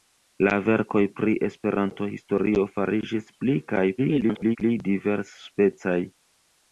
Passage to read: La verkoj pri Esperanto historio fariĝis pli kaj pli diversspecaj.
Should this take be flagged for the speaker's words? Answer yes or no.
yes